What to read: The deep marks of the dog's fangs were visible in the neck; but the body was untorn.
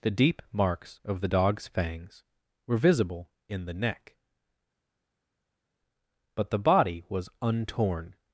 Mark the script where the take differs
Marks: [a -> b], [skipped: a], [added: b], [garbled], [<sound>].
The deep marks of the dog's fangs were visible in the neck; but the body was untorn.